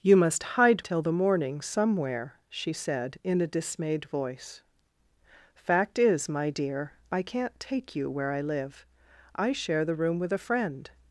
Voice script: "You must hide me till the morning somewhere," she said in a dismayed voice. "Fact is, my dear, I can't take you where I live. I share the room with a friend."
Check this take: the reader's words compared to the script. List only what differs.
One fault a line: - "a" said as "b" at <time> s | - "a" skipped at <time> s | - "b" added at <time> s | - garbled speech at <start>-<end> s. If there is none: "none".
- "me" skipped at 0.8 s